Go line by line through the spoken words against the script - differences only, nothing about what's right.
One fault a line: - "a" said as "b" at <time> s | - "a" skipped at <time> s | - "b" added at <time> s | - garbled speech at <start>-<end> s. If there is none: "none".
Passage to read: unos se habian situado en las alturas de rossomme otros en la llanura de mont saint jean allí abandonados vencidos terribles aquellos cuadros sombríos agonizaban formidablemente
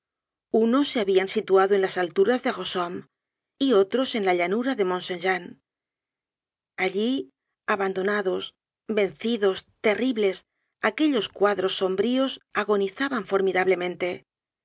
- "y" added at 3.6 s